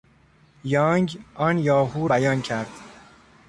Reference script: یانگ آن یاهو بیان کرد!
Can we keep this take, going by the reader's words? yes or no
yes